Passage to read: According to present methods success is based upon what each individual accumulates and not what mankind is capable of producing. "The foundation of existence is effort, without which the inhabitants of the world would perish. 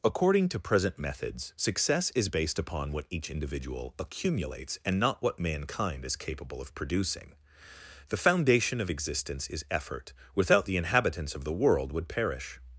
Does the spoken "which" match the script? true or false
false